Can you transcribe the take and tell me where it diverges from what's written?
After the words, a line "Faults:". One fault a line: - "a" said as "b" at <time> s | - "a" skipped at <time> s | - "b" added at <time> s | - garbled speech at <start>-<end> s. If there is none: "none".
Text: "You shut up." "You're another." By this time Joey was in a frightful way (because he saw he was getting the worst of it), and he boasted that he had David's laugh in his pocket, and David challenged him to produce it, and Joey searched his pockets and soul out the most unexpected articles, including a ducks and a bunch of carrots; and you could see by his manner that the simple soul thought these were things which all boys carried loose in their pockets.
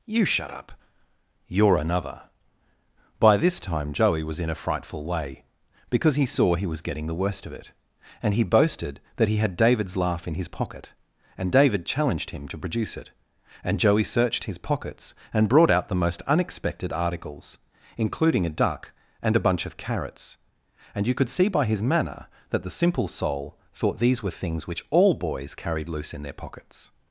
"You shut up." "You're another." By this time Joey was in a frightful way (because he saw he was getting the worst of it), and he boasted that he had David's laugh in his pocket, and David challenged him to produce it, and Joey searched his pockets and brought out the most unexpected articles, including a duck and a bunch of carrots; and you could see by his manner that the simple soul thought these were things which all boys carried loose in their pockets.
Faults:
- "soul" said as "brought" at 15.5 s
- "ducks" said as "duck" at 18.6 s